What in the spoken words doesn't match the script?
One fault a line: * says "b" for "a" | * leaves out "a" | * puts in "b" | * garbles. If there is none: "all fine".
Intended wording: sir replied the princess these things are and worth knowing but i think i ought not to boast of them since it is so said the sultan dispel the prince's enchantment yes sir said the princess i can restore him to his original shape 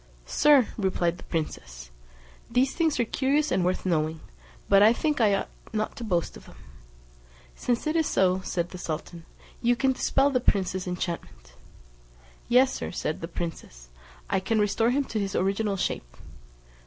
* puts in "curious"
* puts in "you can"